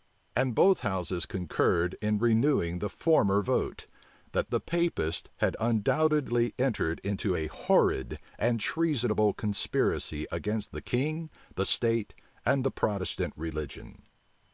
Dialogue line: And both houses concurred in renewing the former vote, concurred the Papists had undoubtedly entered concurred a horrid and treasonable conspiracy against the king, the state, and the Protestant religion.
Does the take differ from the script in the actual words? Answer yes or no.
yes